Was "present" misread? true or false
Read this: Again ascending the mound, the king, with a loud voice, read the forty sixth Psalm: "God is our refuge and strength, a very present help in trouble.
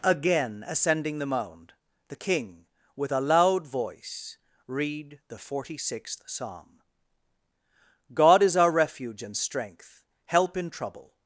true